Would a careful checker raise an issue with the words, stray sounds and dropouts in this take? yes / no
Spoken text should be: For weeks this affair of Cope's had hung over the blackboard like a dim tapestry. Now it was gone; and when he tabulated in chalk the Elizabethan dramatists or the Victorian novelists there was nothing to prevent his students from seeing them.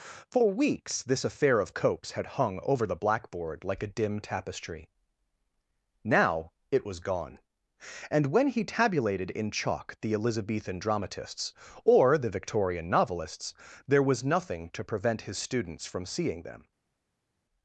no